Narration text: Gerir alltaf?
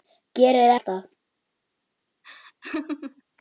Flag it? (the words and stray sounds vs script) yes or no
yes